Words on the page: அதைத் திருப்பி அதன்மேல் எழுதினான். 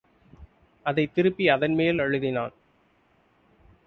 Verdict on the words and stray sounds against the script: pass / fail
pass